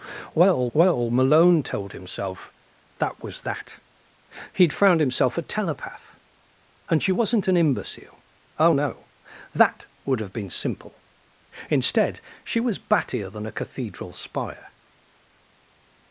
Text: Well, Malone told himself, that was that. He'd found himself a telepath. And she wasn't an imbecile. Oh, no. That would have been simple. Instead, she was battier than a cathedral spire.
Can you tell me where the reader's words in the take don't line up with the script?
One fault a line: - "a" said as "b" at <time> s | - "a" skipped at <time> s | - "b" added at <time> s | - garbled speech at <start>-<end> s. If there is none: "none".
- "well" added at 0.7 s